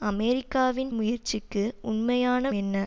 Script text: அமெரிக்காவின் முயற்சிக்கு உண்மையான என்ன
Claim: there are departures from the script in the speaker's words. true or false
false